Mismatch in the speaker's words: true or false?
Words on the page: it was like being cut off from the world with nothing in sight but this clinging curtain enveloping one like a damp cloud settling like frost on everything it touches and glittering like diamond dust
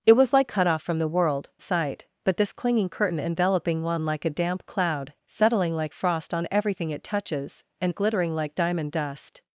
true